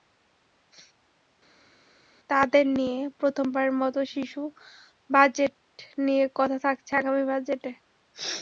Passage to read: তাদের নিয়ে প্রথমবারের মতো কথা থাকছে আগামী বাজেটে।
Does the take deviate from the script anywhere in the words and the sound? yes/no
yes